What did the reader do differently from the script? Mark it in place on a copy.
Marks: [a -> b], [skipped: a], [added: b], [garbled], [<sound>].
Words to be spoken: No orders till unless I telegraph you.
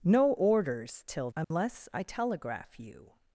No orders till unless [dropout] I telegraph you.